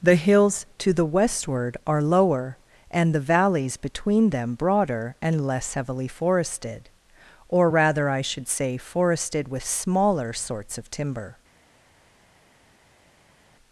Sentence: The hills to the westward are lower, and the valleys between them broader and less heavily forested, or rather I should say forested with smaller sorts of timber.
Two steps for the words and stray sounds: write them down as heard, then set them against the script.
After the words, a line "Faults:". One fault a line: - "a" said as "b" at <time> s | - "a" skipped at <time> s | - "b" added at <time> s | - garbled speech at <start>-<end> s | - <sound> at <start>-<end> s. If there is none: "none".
The hills to the westward are lower, and the valleys between them broader and less heavily forested, or rather I should say forested with smaller sorts of timber.
Faults:
none